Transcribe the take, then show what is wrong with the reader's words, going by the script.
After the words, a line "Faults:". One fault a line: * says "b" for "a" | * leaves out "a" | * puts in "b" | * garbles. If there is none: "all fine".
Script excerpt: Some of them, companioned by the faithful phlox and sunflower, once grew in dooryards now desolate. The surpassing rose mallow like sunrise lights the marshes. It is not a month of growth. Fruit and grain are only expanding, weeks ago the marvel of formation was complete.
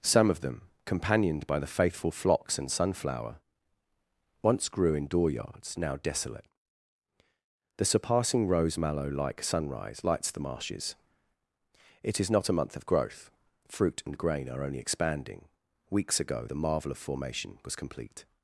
Some of them, companioned by the faithful phlox and sunflower, once grew in dooryards now desolate. The surpassing rose mallow like sunrise lights the marshes. It is not a month of growth. Fruit and grain are only expanding, weeks ago the marvel of formation was complete.
Faults:
all fine